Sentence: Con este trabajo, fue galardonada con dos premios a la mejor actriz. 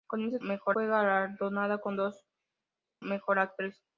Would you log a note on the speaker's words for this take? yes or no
yes